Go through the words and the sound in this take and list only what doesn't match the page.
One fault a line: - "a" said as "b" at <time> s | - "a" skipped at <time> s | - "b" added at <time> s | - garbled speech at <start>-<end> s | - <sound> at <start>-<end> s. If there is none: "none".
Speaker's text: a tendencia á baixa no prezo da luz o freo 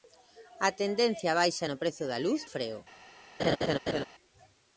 - laugh at 3.4-4.0 s